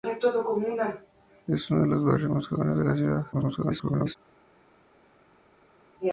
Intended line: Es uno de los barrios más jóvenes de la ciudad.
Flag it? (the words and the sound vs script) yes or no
yes